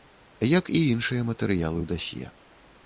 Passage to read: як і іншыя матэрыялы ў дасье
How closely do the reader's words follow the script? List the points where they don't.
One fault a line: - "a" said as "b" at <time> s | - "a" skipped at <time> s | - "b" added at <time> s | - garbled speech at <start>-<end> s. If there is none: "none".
none